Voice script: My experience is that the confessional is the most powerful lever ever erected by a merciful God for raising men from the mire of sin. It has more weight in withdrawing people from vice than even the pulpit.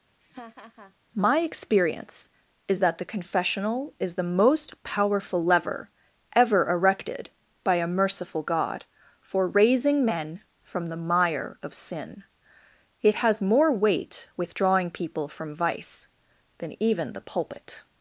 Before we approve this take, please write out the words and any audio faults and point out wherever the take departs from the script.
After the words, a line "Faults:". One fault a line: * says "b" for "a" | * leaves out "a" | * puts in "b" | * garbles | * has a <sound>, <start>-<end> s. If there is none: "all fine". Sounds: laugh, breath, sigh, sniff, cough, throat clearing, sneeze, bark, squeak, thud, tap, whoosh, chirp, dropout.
My experience is that the confessional is the most powerful lever ever erected by a merciful God for raising men from the mire of sin. It has more weight withdrawing people from vice than even the pulpit.
Faults:
* has a laugh, 0.2-0.9 s
* leaves out "in"